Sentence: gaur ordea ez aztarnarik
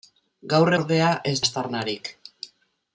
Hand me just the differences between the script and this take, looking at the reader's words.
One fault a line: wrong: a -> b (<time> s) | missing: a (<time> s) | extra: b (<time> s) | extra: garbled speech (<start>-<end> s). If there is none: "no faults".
no faults